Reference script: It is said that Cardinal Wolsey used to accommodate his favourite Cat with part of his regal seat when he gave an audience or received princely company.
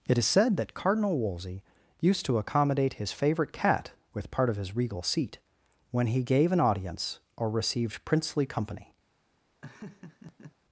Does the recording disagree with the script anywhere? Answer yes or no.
no